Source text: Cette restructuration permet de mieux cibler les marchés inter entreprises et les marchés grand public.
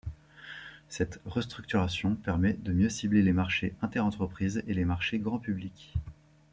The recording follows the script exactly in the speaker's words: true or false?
true